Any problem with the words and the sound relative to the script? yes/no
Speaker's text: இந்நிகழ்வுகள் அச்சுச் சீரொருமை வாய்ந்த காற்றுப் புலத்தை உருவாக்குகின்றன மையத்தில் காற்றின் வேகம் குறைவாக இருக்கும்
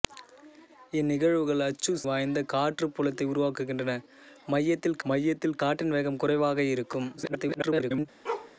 yes